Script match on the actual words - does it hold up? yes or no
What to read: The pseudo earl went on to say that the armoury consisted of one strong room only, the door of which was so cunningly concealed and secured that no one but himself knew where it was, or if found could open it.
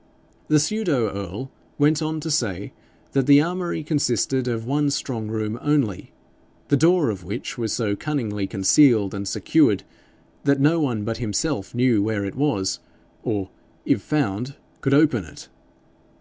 yes